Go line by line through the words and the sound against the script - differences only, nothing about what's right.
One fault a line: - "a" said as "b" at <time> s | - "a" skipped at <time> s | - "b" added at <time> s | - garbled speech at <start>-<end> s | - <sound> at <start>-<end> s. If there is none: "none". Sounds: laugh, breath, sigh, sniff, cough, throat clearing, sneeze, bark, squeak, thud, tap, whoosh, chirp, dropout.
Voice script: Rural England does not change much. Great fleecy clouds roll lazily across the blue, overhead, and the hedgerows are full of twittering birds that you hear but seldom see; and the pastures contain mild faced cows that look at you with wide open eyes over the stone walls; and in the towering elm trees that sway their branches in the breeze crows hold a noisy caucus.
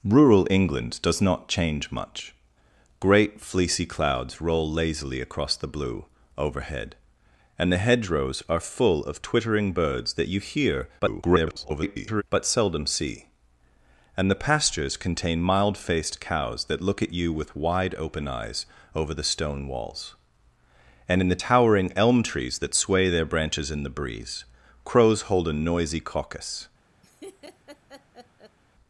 - garbled speech at 11.0-12.2 s
- laugh at 27.0-28.6 s